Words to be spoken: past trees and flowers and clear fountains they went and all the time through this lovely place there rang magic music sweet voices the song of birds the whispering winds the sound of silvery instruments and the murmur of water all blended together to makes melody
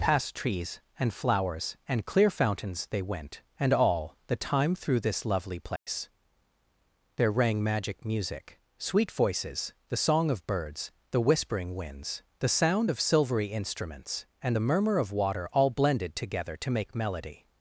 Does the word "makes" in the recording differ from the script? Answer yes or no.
yes